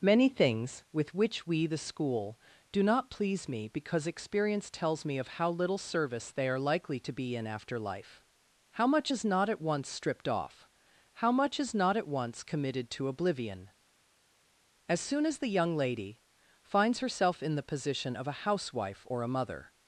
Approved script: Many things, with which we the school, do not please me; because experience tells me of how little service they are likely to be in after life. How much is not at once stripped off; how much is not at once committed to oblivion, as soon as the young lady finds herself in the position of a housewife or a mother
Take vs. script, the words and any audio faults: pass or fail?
pass